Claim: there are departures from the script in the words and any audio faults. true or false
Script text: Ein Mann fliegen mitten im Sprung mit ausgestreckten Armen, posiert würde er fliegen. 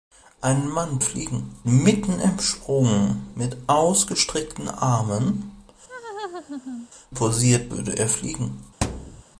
true